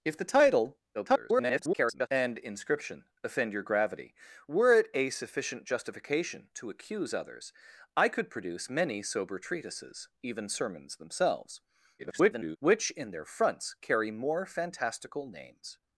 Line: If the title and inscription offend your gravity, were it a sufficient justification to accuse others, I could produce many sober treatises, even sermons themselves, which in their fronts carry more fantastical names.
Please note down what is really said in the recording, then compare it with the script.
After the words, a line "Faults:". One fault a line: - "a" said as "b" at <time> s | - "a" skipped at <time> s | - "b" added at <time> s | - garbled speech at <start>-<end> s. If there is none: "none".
If the title [garbled] and inscription offend your gravity, were it a sufficient justification to accuse others, I could produce many sober treatises, even sermons themselves, [garbled] which in their fronts carry more fantastical names.
Faults:
- garbled speech at 0.9-2.1 s
- garbled speech at 12.0-12.6 s